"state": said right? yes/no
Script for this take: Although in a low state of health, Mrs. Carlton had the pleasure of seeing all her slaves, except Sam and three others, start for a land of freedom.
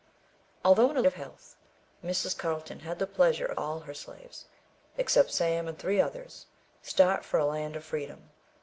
no